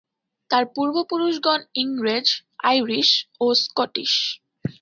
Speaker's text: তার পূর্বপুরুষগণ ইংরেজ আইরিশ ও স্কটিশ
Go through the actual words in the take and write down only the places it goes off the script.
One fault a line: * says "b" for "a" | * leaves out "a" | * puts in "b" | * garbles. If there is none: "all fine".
all fine